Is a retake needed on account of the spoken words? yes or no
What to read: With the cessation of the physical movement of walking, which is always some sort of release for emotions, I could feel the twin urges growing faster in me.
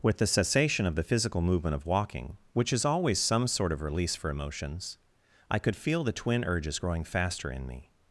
no